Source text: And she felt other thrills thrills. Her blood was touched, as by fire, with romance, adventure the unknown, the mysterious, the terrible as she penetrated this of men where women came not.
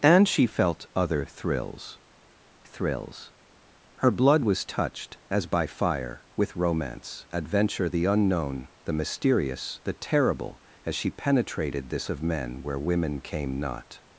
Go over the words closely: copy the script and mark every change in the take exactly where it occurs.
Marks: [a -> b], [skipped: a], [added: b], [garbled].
And she felt other thrills thrills. Her blood was touched, as by fire, with romance, adventure the unknown, the mysterious, the terrible as she penetrated this of men where women came not.